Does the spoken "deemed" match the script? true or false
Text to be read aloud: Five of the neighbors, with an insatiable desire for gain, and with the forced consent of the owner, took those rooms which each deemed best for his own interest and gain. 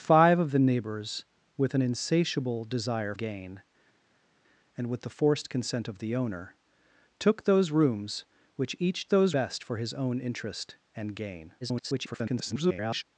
false